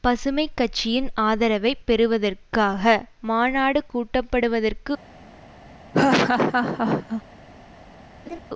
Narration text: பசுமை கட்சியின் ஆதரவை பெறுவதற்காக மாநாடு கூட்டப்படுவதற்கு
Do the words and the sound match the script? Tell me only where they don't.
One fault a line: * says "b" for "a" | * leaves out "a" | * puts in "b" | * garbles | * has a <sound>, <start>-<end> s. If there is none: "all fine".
* has a laugh, 5.9-7.2 s
* has a laugh, 8.3-8.4 s